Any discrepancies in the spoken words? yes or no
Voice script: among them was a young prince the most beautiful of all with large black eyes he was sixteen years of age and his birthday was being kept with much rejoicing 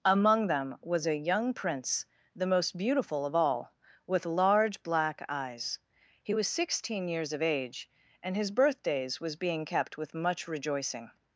yes